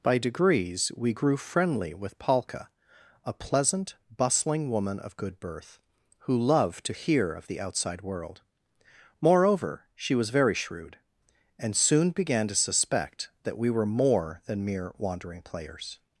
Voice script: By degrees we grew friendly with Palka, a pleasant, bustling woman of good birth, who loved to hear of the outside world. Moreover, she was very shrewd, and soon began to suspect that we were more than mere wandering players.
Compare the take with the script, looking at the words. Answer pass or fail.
pass